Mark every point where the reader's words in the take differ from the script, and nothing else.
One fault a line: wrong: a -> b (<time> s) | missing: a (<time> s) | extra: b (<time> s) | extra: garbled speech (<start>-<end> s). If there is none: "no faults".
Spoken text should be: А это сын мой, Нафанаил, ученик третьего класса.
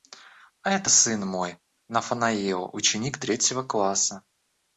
no faults